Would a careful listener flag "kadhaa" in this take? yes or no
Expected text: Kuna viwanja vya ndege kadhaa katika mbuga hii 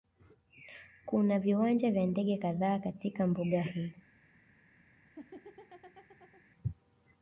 no